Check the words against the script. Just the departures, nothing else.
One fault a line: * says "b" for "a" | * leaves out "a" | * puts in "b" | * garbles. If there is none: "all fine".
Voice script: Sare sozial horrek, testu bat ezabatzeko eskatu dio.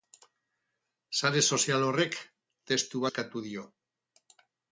* leaves out "bat ezabatzeko"